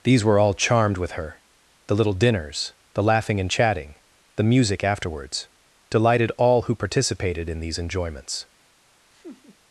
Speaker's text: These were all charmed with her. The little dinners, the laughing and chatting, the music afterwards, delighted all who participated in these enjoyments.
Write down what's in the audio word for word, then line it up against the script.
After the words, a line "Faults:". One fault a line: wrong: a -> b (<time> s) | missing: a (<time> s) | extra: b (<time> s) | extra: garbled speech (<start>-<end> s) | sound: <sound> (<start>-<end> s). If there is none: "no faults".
These were all charmed with her. The little dinners, the laughing and chatting, the music afterwards, delighted all who participated in these enjoyments.
Faults:
sound: laugh (9.1-9.6 s)